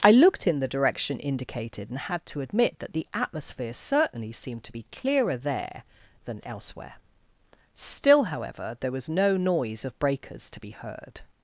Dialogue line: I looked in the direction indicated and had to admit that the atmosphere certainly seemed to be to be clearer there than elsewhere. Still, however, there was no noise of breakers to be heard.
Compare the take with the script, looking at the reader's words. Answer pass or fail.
fail